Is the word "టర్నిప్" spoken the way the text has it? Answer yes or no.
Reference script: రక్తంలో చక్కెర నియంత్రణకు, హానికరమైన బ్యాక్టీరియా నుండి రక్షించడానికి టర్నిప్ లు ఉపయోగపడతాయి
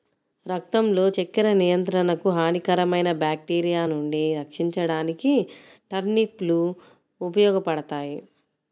yes